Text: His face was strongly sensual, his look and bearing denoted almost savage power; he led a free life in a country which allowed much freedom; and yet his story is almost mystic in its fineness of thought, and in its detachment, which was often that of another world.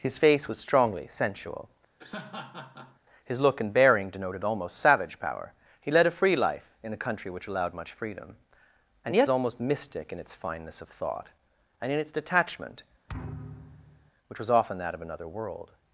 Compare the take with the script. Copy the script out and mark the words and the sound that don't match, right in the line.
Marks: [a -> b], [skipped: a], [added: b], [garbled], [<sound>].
His face was strongly sensual, [laugh] his look and bearing denoted almost savage power; he led a free life in a country which allowed much freedom; and yet [skipped: his story is] almost mystic in its fineness of thought, and in its detachment, [thud] which was often that of another world.